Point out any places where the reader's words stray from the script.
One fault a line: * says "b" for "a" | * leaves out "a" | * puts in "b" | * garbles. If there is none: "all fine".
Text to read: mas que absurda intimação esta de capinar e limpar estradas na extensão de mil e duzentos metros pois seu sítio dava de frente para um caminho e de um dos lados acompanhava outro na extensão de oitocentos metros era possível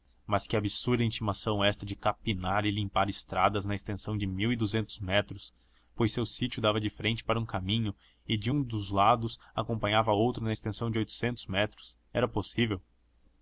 all fine